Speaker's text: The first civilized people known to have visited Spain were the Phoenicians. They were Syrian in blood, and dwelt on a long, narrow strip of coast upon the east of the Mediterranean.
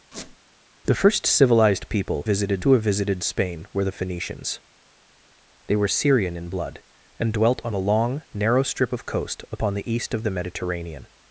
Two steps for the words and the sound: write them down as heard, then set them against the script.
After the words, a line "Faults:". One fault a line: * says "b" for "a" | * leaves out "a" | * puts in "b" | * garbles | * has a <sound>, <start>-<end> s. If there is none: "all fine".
The first civilized people visited to have visited Spain were the Phoenicians. They were Syrian in blood, and dwelt on a long, narrow strip of coast upon the east of the Mediterranean.
Faults:
* has a squeak, 0.1-0.4 s
* says "visited" for "known"